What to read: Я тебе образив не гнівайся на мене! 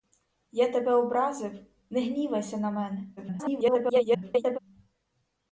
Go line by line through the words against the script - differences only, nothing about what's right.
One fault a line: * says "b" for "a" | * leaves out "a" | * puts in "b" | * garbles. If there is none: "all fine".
* garbles